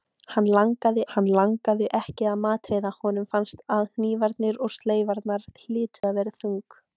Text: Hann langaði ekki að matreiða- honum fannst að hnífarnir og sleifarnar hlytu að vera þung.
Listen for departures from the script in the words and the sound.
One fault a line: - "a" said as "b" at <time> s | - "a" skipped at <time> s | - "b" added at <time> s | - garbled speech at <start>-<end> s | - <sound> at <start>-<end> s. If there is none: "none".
- "hann langaði" added at 1.1 s
- dropout at 6.0-6.0 s